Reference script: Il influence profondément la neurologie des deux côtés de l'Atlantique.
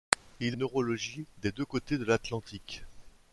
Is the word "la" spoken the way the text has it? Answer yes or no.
no